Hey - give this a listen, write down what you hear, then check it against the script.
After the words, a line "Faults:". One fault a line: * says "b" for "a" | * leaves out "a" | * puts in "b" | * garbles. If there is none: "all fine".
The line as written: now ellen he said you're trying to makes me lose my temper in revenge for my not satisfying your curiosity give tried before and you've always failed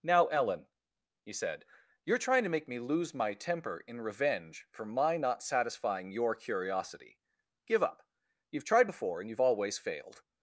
now ellen he said you're trying to make me lose my temper in revenge for my not satisfying your curiosity give up you've tried before and you've always failed
Faults:
* says "make" for "makes"
* puts in "up you've"